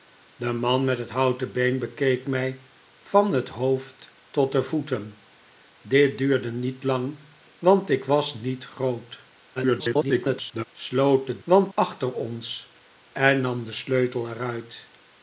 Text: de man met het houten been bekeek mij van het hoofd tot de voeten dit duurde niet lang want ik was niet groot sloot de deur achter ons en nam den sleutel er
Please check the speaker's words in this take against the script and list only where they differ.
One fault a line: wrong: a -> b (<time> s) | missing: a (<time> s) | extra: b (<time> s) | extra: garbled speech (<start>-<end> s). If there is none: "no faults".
extra: garbled speech (9.6-10.6 s)
wrong: deur -> want (11.4 s)